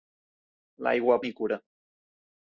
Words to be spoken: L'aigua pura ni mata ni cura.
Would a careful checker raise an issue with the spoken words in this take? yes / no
yes